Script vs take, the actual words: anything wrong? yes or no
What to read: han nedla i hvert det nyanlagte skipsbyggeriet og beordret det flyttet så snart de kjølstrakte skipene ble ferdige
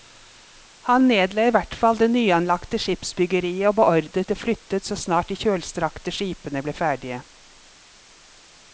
yes